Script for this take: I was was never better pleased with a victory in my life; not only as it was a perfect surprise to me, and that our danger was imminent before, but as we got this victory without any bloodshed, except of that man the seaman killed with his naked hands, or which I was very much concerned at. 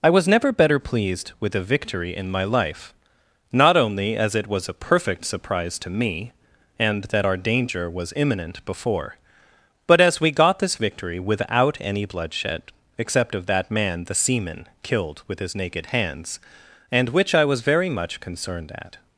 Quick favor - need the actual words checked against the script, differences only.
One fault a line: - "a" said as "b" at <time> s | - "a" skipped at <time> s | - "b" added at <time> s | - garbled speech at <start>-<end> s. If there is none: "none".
- "was" skipped at 0.3 s
- "or" said as "and" at 16.9 s